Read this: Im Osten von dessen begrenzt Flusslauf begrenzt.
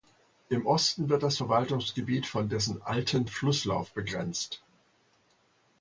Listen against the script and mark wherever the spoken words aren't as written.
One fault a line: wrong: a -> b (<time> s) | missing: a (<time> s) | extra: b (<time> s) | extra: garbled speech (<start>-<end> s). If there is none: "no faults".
extra: wird das Verwaltungsgebiet (1.1 s)
wrong: begrenzt -> alten (2.8 s)